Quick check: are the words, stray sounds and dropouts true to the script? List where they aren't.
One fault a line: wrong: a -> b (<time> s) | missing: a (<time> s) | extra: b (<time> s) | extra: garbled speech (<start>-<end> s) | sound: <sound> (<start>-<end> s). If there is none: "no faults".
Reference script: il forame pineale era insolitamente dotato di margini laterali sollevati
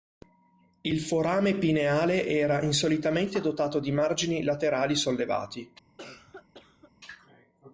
sound: cough (6.0-6.9 s)